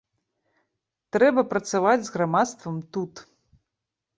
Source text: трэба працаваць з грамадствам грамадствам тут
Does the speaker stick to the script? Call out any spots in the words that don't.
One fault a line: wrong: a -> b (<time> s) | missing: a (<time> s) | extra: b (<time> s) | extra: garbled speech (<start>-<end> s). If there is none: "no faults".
missing: грамадствам (2.8 s)